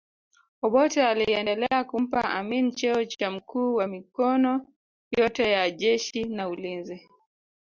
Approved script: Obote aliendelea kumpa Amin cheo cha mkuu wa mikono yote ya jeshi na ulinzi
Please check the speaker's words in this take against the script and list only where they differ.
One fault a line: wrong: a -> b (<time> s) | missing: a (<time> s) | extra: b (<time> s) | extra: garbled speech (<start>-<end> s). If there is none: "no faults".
no faults